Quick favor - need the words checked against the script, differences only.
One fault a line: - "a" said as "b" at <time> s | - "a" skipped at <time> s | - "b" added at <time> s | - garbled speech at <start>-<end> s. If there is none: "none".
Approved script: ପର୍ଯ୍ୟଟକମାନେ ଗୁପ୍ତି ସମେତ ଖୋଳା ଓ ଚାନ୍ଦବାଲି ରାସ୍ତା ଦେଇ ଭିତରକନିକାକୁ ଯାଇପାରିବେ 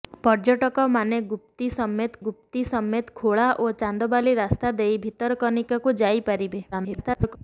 - "ଗୁପ୍ତି ସମେତ" added at 2.2 s
- garbled speech at 6.7-7.4 s